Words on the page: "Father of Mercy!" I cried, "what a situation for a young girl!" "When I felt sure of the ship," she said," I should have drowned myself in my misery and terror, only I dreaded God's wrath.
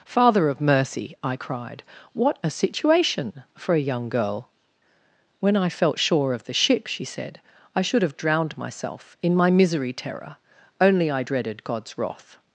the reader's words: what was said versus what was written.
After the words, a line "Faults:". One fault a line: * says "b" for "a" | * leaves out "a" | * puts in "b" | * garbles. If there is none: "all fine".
"Father of Mercy!" I cried, "what a situation for a young girl!" "When I felt sure of the ship," she said," I should have drowned myself in my misery terror, only I dreaded God's wrath.
Faults:
* leaves out "and"